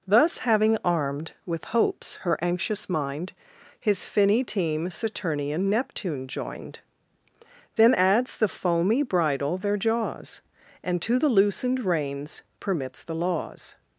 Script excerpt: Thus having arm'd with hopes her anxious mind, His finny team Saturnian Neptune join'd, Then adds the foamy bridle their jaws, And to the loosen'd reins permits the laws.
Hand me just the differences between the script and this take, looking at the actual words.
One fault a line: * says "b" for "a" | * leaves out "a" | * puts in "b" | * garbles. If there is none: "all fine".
all fine